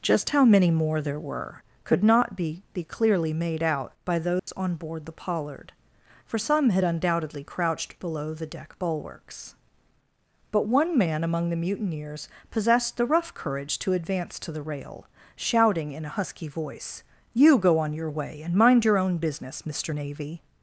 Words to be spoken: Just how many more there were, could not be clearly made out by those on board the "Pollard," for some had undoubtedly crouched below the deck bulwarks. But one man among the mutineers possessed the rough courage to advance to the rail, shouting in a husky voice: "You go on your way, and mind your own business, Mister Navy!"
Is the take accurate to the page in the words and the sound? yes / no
no